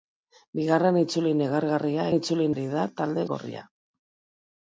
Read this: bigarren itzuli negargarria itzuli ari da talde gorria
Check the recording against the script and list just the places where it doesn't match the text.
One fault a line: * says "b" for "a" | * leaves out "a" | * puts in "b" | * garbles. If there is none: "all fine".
all fine